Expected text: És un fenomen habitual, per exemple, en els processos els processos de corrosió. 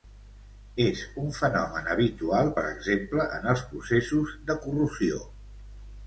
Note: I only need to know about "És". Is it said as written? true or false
true